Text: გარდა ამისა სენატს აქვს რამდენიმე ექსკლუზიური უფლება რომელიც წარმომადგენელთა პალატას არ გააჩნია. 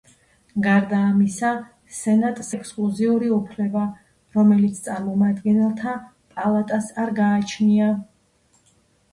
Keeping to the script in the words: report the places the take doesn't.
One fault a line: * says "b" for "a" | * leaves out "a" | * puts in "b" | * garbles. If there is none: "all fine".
* leaves out "აქვს რამდენიმე"